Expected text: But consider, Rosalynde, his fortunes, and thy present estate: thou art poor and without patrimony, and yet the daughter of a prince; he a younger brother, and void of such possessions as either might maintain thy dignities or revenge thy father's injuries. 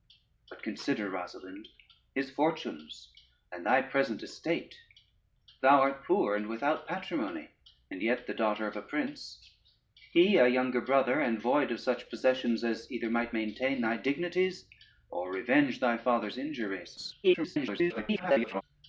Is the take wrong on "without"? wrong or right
right